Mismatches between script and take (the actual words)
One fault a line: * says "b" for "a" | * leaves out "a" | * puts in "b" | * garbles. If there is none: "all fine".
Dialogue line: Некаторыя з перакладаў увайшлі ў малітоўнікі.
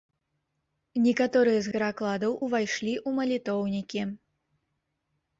all fine